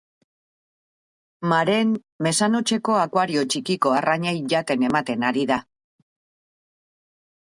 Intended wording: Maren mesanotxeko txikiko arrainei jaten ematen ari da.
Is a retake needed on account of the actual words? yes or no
yes